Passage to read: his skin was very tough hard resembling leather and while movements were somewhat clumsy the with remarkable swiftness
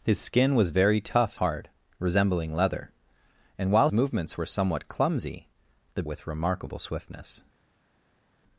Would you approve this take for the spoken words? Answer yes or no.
yes